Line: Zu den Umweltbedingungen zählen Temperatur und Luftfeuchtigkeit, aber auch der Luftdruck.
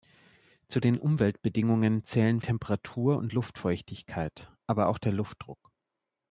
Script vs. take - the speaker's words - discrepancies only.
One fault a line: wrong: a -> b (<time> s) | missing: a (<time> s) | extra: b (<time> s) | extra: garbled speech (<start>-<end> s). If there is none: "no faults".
no faults